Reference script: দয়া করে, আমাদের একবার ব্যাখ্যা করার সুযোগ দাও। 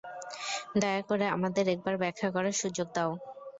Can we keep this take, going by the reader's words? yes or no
yes